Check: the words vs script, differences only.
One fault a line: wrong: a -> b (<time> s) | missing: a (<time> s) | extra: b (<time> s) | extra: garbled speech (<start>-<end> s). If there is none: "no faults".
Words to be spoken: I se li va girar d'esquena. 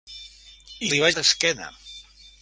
missing: se (0.9 s)
missing: girar (1.1 s)